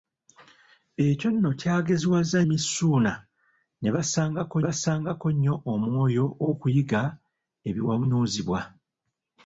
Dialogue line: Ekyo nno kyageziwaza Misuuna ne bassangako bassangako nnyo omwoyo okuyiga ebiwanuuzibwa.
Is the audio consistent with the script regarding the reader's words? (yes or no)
yes